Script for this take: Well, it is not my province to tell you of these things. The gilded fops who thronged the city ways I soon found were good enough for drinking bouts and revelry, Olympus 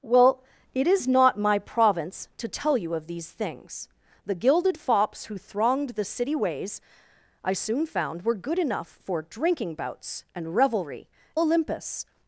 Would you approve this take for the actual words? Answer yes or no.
yes